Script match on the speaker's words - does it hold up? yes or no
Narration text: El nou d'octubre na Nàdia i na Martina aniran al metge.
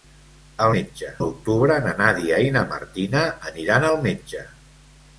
no